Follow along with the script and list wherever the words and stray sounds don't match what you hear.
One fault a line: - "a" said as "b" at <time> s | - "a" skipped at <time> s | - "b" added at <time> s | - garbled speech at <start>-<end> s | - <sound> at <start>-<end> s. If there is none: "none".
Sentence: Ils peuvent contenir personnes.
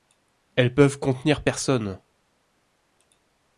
- "Ils" said as "Elles" at 0.6 s